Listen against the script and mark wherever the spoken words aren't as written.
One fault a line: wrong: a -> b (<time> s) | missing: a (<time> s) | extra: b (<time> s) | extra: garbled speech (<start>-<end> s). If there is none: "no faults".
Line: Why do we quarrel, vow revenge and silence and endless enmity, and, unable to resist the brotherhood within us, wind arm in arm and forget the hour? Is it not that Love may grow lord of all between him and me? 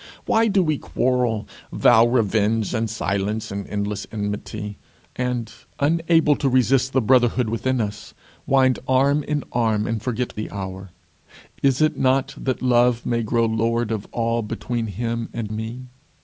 no faults